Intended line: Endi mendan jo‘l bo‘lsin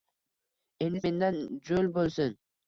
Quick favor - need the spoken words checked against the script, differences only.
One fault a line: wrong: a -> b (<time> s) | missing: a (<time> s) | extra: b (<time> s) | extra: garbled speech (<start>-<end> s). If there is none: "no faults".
no faults